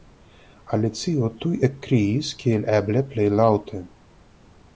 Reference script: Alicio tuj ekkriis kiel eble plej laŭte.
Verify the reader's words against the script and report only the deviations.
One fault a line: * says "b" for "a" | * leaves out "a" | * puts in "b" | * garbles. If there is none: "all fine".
all fine